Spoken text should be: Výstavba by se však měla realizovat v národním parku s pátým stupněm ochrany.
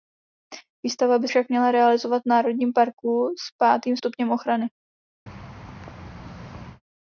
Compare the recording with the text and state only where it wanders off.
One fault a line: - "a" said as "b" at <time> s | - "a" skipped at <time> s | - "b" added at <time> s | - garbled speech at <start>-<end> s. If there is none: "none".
- "se" skipped at 1.3 s